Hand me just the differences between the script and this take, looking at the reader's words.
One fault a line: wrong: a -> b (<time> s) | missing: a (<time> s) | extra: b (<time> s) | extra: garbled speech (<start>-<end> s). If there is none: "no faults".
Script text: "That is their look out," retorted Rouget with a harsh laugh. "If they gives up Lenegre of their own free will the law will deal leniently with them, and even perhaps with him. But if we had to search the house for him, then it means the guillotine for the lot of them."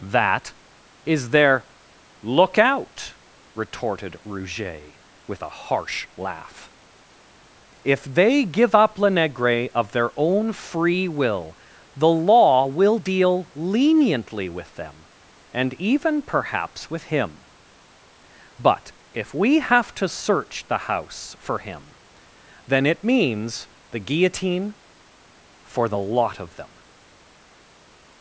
wrong: gives -> give (8.5 s)
wrong: had -> have (19.6 s)